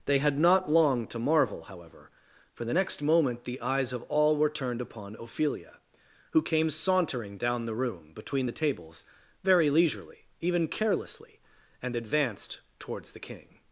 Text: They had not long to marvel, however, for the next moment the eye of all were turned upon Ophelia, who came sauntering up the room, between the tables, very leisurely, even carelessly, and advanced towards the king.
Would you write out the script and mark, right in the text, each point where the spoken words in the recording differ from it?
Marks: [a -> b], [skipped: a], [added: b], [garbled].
They had not long to marvel, however, for the next moment the [eye -> eyes] of all were turned upon Ophelia, who came sauntering [up -> down] the room, between the tables, very leisurely, even carelessly, and advanced towards the king.